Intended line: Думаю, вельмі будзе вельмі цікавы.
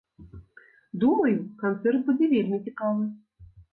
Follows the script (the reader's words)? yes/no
no